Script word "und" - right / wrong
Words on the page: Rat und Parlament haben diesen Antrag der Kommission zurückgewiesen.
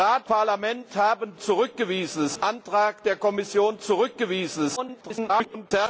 wrong